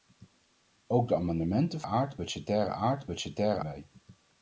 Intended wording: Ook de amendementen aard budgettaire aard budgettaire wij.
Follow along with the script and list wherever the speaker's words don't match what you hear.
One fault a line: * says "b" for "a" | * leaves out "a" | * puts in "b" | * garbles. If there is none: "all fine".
all fine